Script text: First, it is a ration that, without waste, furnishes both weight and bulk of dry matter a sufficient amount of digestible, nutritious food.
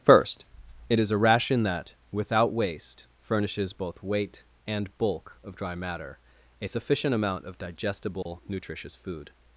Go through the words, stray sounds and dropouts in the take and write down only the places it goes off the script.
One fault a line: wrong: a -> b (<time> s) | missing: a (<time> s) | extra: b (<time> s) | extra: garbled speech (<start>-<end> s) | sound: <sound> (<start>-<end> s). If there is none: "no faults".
sound: dropout (8.2-8.3 s)